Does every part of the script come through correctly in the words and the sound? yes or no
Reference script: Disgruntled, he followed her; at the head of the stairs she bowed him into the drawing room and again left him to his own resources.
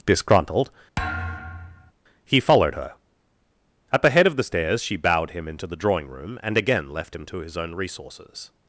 no